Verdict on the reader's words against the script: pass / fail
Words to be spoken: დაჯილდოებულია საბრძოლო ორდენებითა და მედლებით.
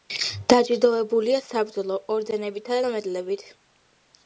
pass